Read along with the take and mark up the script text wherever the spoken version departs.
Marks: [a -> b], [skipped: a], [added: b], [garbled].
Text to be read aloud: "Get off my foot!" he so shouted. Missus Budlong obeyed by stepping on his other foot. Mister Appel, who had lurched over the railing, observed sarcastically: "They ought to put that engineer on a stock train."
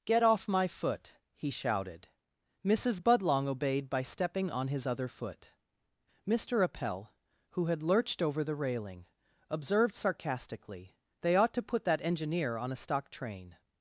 "Get off my foot!" he [skipped: so] shouted. Missus Budlong obeyed by stepping on his other foot. Mister Appel, who had lurched over the railing, observed sarcastically: "They ought to put that engineer on a stock train."